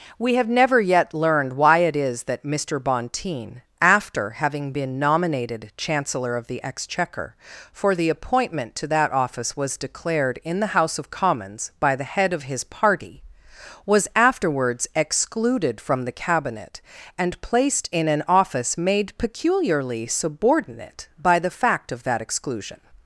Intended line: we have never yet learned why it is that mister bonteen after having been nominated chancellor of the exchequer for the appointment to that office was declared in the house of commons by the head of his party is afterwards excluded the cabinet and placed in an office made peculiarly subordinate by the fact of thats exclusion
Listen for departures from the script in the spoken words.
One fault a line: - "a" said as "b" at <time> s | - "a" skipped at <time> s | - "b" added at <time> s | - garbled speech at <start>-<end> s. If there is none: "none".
- "is" said as "was" at 13.8 s
- "from" added at 15.8 s
- "thats" said as "that" at 22.0 s